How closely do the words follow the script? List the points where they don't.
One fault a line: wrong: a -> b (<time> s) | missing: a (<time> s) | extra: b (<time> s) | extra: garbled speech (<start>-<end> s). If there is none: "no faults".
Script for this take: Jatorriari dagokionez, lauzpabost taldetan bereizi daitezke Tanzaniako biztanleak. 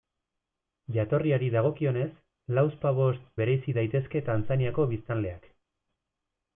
missing: taldetan (3.3 s)